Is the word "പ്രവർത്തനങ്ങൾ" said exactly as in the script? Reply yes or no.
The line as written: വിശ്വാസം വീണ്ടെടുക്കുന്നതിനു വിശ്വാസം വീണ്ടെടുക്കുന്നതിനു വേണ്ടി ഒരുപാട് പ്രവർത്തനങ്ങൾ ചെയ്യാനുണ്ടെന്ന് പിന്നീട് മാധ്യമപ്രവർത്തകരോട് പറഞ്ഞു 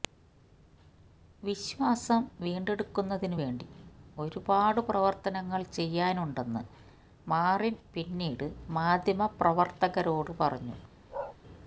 yes